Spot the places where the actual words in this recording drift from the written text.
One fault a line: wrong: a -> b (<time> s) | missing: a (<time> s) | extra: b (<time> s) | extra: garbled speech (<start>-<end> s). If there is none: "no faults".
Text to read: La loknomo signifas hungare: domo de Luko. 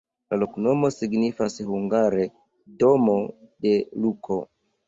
no faults